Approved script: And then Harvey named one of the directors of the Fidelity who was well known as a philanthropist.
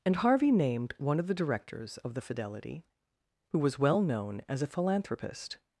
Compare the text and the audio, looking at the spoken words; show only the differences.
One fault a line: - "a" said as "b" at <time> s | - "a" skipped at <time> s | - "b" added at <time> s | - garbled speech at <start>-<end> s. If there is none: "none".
- "then" skipped at 0.2 s